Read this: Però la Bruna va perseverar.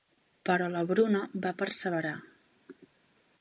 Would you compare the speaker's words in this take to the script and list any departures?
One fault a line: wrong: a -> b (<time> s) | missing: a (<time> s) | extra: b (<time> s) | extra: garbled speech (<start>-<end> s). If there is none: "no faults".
no faults